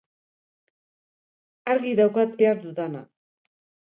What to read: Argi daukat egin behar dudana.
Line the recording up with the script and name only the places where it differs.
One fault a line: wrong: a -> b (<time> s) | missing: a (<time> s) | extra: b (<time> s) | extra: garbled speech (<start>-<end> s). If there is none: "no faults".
missing: egin (2.4 s)